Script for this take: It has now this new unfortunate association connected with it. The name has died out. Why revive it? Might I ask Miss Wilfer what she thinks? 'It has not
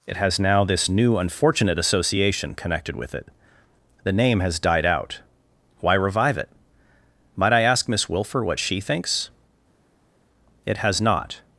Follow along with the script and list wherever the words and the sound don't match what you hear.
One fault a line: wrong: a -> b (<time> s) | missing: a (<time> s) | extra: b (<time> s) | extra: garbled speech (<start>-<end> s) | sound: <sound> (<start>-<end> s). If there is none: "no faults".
no faults